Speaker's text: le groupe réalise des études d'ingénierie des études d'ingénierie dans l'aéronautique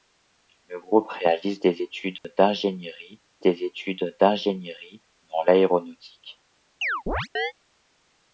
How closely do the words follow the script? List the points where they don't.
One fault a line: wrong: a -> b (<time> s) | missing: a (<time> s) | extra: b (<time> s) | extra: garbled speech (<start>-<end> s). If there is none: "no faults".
no faults